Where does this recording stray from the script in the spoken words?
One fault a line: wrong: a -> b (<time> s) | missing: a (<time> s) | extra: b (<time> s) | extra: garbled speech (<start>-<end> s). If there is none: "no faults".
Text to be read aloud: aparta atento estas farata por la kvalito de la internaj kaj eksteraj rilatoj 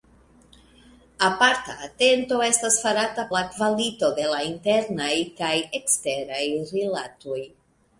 missing: por (3.2 s)